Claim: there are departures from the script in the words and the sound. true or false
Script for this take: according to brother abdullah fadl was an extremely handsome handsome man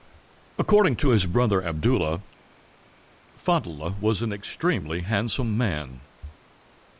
true